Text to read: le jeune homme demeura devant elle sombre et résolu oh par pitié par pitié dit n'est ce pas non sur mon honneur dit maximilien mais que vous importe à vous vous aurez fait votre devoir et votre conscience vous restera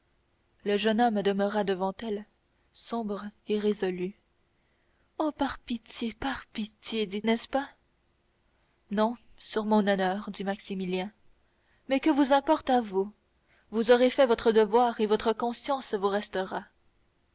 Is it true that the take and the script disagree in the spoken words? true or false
false